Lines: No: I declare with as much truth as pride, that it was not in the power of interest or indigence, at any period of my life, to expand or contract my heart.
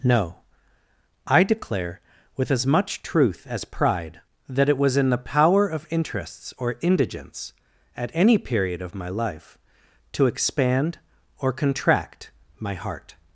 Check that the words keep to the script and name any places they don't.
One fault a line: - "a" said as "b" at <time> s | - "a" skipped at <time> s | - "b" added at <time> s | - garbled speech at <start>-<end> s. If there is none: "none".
- "not" skipped at 5.0 s
- "interest" said as "interests" at 5.9 s